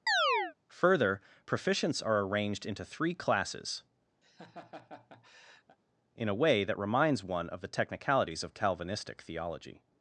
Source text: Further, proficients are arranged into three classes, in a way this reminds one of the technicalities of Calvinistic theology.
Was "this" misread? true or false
true